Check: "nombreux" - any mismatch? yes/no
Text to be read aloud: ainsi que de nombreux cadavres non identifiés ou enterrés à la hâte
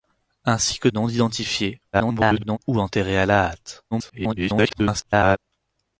yes